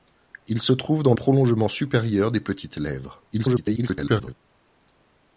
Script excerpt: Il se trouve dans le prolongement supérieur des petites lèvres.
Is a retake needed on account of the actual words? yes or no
yes